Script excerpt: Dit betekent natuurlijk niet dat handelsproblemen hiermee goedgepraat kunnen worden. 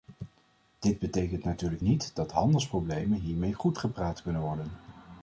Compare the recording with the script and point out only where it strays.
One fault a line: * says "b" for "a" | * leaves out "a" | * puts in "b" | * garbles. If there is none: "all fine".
all fine